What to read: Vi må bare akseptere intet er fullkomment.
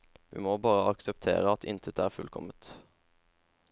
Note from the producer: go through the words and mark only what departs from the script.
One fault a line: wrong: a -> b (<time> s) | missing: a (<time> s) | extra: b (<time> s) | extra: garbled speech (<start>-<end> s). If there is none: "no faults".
extra: at (1.5 s)